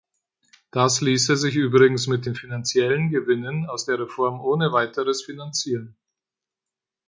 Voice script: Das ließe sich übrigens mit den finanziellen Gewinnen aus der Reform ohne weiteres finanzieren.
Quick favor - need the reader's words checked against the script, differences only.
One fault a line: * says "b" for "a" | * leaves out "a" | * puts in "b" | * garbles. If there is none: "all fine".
all fine